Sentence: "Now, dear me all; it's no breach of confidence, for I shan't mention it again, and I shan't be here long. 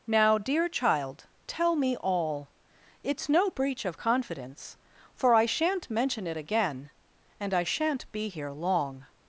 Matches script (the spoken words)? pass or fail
fail